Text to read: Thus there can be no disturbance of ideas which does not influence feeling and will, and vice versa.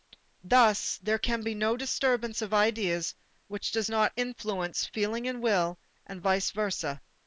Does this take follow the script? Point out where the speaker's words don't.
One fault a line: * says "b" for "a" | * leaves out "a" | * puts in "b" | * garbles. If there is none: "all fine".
all fine